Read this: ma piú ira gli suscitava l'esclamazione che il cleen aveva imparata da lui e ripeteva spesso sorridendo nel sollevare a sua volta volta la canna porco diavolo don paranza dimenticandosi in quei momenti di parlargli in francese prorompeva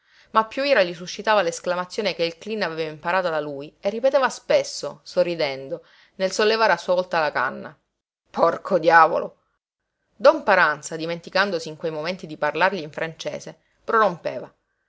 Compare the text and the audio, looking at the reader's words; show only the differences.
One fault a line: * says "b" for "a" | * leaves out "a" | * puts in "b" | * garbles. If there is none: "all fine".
* leaves out "volta"